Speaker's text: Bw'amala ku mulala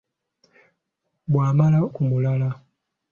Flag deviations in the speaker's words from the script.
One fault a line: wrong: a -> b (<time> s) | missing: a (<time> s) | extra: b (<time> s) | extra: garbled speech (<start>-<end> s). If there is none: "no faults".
no faults